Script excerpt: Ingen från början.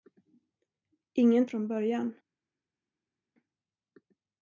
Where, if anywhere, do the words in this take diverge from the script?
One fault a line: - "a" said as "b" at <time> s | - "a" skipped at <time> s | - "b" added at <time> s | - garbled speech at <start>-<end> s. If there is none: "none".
none